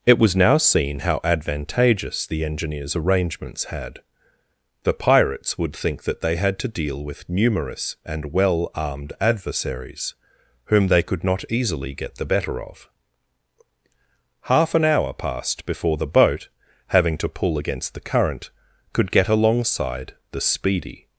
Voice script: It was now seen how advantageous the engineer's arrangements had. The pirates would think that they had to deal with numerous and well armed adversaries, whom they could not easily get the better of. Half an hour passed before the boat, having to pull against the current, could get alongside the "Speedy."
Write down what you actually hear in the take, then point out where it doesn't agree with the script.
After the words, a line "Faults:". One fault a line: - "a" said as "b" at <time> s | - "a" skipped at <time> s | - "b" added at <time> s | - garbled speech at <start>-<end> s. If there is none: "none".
It was now seen how advantageous the engineer's arrangements had. The pirates would think that they had to deal with numerous and well armed adversaries, whom they could not easily get the better of. Half an hour passed before the boat, having to pull against the current, could get alongside the "Speedy."
Faults:
none